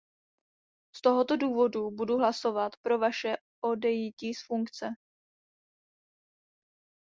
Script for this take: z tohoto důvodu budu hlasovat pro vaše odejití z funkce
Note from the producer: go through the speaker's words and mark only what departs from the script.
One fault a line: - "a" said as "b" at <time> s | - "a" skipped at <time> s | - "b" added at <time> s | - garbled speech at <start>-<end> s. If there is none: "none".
none